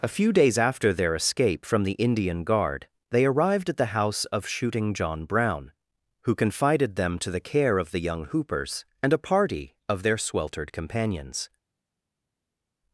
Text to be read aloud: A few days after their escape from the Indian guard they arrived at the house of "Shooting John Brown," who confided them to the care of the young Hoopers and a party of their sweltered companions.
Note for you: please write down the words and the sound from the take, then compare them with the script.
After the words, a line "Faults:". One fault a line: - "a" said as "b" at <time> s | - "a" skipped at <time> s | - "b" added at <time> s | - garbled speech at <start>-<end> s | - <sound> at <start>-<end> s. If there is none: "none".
A few days after their escape from the Indian guard they arrived at the house of "Shooting John Brown," who confided them to the care of the young Hoopers and a party of their sweltered companions.
Faults:
none